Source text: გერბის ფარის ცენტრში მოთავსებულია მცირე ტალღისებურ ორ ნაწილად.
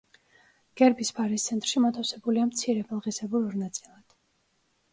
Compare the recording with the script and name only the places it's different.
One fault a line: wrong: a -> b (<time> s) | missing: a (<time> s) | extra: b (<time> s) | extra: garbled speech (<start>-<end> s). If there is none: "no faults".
no faults